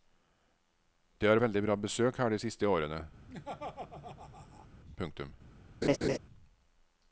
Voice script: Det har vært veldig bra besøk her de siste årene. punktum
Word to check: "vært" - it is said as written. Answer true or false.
false